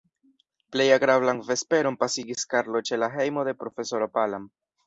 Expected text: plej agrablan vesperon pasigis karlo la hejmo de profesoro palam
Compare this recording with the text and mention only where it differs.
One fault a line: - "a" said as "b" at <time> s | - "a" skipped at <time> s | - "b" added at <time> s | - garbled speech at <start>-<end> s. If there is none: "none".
- "ĉe" added at 2.9 s